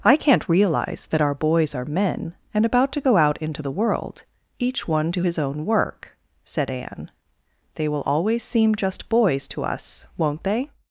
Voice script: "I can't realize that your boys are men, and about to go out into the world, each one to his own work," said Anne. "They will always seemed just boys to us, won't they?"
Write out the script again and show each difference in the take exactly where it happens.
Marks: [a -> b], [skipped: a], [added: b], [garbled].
"I can't realize that [your -> our] boys are men, and about to go out into the world, each one to his own work," said Anne. "They will always [seemed -> seem] just boys to us, won't they?"